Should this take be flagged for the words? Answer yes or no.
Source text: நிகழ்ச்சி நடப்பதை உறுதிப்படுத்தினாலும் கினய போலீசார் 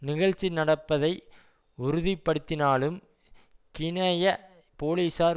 no